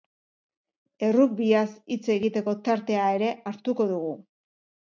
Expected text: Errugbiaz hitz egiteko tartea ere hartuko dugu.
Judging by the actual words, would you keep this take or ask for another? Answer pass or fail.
pass